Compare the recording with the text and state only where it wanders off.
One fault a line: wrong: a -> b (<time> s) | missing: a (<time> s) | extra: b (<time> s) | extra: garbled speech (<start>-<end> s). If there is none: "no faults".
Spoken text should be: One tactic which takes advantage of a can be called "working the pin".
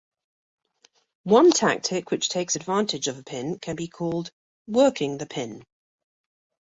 extra: pin (3.2 s)